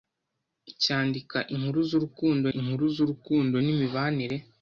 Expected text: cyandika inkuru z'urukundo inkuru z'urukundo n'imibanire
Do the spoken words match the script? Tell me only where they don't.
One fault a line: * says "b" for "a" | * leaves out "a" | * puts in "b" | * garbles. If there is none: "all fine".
all fine